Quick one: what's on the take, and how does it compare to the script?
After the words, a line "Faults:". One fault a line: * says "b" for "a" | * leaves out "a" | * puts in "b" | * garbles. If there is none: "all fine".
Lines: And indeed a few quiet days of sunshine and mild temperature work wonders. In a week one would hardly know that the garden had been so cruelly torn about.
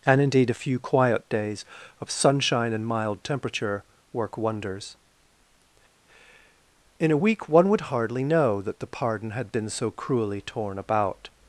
And indeed a few quiet days of sunshine and mild temperature work wonders. In a week one would hardly know that the pardon had been so cruelly torn about.
Faults:
* says "pardon" for "garden"